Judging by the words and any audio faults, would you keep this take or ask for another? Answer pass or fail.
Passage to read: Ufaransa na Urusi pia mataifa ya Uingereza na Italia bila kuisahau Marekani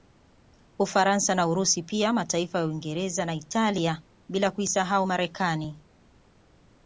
pass